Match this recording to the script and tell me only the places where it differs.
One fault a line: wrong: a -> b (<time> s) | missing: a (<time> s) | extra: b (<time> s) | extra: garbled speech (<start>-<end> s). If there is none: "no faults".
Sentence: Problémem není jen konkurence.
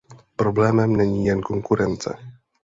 no faults